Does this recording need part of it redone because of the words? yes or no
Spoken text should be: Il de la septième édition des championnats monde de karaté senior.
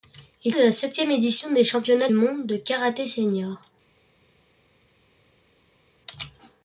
no